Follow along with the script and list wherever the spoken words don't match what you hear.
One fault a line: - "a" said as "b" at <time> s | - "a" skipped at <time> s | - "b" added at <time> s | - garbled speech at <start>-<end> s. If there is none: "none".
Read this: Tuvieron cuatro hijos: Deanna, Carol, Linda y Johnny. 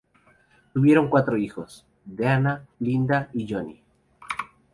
- "Carol" skipped at 2.7 s